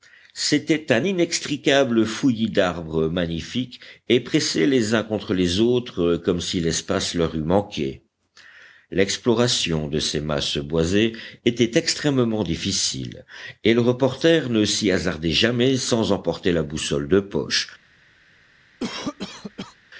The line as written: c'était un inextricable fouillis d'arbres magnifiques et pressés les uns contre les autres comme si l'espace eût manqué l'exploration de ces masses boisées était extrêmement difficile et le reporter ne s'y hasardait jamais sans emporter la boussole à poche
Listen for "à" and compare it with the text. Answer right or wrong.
wrong